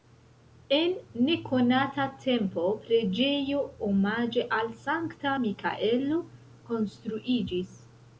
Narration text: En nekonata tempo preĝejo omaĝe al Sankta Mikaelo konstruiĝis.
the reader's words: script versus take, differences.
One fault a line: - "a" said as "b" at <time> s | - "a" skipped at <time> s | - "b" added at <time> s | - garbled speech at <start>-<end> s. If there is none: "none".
none